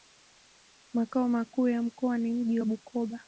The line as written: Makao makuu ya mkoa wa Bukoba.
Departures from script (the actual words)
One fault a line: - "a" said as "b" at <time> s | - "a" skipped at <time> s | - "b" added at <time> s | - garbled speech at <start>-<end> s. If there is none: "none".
- "ni mji" added at 2.2 s